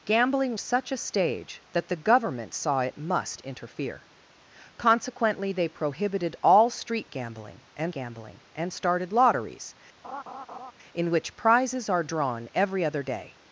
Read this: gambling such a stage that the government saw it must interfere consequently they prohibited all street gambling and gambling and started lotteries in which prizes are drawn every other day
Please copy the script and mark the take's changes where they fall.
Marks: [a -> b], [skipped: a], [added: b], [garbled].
gambling such a stage that the government saw it must interfere consequently they prohibited all street gambling and gambling and started lotteries in which prizes are drawn every other day